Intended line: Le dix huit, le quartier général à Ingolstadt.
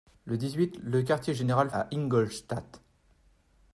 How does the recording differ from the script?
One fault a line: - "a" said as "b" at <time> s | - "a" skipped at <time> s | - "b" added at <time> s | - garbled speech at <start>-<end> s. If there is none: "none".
none